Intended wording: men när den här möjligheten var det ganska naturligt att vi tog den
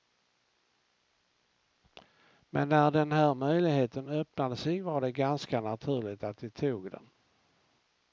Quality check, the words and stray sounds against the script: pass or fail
fail